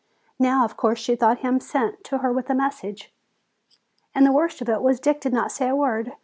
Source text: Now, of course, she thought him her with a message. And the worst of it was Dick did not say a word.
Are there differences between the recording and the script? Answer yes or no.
yes